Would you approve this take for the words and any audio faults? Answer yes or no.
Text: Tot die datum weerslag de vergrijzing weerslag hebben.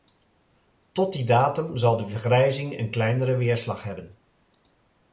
no